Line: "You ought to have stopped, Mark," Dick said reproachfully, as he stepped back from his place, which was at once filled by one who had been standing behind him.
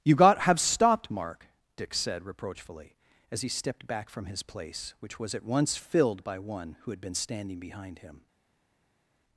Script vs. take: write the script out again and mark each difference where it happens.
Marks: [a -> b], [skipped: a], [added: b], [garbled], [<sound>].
"You [ought to -> got] have stopped, Mark," Dick said reproachfully, as he stepped back from his place, which was at once filled by one who had been standing behind him.